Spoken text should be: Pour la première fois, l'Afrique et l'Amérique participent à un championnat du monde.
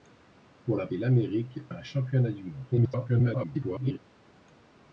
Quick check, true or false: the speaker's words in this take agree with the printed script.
false